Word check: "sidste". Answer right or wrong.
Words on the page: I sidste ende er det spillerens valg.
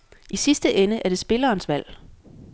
right